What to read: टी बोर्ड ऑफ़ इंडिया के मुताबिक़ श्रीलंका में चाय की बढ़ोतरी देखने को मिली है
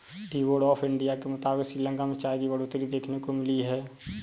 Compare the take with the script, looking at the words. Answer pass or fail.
pass